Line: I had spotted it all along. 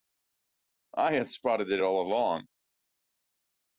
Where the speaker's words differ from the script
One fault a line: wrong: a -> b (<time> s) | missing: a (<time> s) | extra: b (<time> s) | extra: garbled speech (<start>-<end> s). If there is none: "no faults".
no faults